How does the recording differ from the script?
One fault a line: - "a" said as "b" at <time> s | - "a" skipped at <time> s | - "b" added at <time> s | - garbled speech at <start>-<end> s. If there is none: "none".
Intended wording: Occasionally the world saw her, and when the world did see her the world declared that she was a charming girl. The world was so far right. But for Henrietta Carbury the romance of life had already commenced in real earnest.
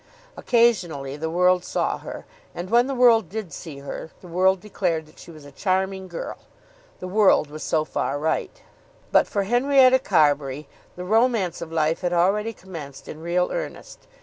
none